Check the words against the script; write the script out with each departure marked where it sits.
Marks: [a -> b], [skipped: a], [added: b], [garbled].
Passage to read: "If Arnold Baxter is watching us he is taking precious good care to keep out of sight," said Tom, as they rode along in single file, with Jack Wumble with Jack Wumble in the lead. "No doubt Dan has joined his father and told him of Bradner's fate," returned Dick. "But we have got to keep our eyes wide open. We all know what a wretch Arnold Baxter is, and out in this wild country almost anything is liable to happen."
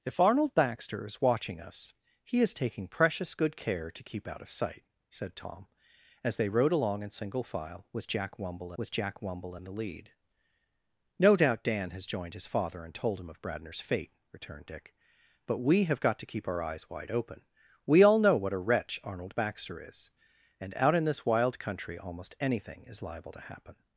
"If Arnold Baxter is watching us he is taking precious good care to keep out of sight," said Tom, as they rode along in single file, with Jack Wumble with Jack Wumble in the lead. "No doubt Dan has joined his father and told him of Bradner's fate," returned Dick. "But we have got to keep our eyes wide open. We all know what a wretch Arnold Baxter is, and out in this wild country almost anything is liable to happen."